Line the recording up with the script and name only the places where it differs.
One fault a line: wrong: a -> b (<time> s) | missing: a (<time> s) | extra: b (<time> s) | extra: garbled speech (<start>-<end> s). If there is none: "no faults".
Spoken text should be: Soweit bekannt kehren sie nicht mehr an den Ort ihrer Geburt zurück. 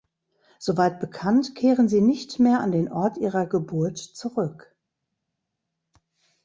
no faults